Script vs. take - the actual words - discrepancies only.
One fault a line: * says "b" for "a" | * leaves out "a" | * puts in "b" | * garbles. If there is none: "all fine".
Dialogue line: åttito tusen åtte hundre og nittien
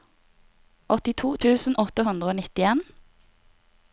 all fine